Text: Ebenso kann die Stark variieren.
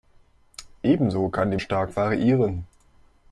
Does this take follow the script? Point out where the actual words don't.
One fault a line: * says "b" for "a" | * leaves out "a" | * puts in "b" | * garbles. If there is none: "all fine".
all fine